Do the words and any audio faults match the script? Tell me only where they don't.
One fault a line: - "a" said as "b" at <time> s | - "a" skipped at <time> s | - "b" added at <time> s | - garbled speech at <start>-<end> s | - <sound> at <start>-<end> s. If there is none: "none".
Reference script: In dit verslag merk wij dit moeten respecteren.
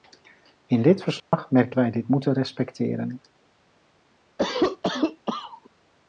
- dropout at 1.2-1.3 s
- cough at 4.4-5.7 s